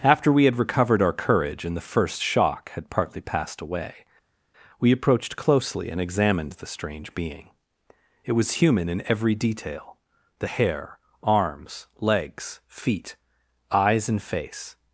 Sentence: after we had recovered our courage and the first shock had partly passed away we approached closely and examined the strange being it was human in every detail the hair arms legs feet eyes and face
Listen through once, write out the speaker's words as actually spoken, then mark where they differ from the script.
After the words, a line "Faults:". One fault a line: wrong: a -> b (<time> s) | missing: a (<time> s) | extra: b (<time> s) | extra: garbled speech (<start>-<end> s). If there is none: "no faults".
after we had recovered our courage and the first shock had partly passed away we approached closely and examined the strange being it was human in every detail the hair arms legs feet eyes and face
Faults:
no faults